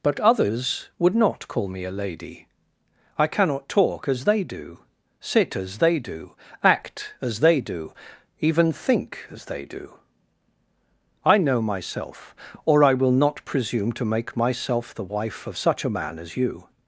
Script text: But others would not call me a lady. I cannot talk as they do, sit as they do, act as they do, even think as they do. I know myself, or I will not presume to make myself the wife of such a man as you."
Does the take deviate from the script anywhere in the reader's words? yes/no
no